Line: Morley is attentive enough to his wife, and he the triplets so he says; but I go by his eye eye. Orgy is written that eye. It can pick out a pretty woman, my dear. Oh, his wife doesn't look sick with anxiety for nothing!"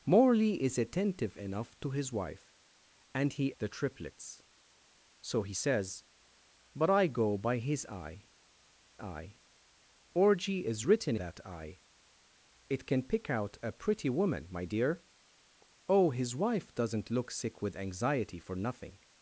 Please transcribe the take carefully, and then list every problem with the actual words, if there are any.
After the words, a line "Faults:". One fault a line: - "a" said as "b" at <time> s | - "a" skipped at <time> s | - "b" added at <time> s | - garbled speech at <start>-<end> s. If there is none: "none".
Morley is attentive enough to his wife, and he the triplets so he says; but I go by his eye eye. Orgy is written that eye. It can pick out a pretty woman, my dear. Oh, his wife doesn't look sick with anxiety for nothing!"
Faults:
none